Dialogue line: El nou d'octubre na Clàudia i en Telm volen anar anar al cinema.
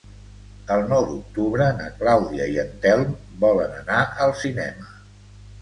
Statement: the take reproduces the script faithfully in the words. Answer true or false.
false